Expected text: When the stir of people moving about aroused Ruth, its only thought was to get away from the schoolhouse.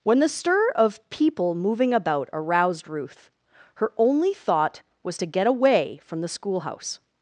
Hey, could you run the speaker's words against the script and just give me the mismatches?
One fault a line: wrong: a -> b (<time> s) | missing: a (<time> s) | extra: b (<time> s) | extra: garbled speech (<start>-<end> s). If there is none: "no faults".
wrong: its -> her (3.8 s)